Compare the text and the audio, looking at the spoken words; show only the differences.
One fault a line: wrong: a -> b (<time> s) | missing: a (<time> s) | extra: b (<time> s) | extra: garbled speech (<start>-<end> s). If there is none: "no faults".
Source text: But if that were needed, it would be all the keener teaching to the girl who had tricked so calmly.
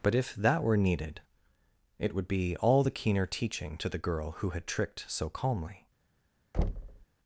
no faults